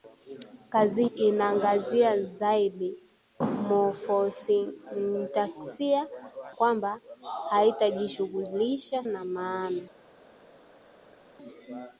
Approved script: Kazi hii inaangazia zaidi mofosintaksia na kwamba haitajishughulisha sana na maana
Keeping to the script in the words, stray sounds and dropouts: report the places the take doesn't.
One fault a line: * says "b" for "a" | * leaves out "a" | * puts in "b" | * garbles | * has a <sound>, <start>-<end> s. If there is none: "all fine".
* leaves out "hii"
* leaves out "na"
* leaves out "sana"